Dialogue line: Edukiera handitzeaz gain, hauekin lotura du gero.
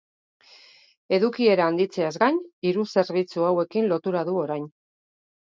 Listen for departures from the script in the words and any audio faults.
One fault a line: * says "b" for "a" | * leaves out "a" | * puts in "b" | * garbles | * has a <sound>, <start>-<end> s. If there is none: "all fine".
* puts in "hiru zerbitzu"
* says "orain" for "gero"